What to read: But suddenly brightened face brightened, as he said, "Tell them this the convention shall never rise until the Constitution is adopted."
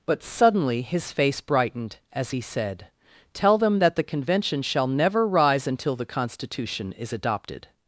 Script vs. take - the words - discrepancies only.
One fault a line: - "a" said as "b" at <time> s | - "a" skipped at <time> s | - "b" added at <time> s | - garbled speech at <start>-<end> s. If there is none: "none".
- "brightened" said as "his" at 0.8 s
- "this" said as "that" at 3.8 s